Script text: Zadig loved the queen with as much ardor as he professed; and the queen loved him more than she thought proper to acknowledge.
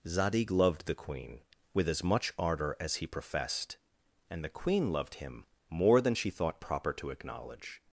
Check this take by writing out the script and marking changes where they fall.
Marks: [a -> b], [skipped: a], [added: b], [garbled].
Zadig loved the queen with as much ardor as he professed; and the queen loved him more than she thought proper to acknowledge.